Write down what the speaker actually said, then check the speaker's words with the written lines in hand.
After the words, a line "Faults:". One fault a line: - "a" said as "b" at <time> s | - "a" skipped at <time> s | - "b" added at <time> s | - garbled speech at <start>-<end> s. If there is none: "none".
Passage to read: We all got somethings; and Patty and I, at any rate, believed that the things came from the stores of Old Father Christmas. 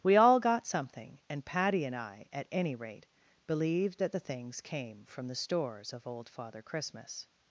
We all got something; and Patty and I, at any rate, believed that the things came from the stores of Old Father Christmas.
Faults:
- "somethings" said as "something" at 0.7 s